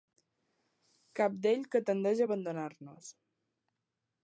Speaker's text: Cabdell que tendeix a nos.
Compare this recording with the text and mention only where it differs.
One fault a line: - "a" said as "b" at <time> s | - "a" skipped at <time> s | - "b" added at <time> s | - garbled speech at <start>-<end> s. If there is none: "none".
- "abandonar" added at 2.3 s